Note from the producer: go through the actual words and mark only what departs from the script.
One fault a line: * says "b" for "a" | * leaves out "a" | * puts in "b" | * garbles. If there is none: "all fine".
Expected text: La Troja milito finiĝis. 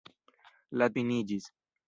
* leaves out "Troja milito"